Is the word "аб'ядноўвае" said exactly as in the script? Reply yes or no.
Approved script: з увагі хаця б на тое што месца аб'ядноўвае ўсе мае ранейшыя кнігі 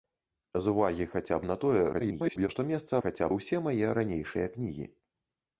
no